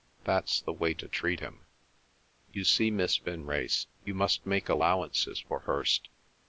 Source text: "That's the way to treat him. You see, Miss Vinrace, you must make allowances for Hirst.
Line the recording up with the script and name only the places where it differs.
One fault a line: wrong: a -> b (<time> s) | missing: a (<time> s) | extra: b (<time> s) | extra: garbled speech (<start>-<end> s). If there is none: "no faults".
no faults